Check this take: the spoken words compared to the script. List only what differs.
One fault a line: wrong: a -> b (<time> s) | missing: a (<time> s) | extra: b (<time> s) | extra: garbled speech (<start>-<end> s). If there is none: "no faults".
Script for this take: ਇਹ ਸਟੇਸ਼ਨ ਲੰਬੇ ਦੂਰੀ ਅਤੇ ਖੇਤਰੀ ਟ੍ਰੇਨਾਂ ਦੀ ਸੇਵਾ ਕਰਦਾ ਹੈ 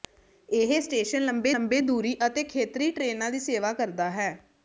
extra: ਲੰਬੇ (1.5 s)